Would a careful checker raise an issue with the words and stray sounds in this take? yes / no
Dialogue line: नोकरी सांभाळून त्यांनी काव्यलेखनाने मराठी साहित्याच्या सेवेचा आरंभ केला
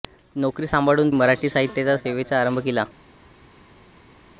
yes